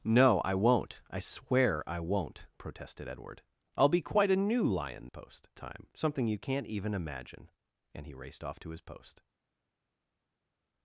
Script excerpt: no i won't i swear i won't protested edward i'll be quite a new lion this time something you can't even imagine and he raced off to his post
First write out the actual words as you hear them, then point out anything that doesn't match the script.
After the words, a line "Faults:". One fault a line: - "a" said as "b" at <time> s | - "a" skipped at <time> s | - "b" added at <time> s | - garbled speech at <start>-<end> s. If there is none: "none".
no i won't i swear i won't protested edward i'll be quite a new lion post time something you can't even imagine and he raced off to his post
Faults:
- "this" said as "post" at 5.1 s